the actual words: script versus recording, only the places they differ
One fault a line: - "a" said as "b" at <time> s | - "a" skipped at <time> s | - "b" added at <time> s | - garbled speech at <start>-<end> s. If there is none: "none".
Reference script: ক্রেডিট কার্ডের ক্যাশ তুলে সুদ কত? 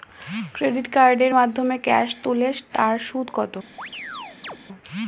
- "মাধ্যমে" added at 1.3 s
- "তার" added at 2.7 s